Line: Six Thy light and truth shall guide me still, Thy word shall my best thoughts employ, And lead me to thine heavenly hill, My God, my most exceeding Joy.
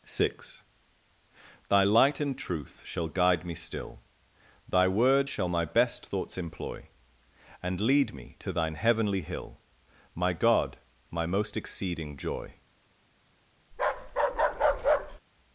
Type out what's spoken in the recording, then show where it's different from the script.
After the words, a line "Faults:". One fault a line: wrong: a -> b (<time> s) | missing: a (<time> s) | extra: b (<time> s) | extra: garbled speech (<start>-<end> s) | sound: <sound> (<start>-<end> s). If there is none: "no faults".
Six Thy light and truth shall guide me still, Thy word shall my best thoughts employ, And lead me to thine heavenly hill, My God, my most exceeding Joy.
Faults:
sound: bark (13.7-15.2 s)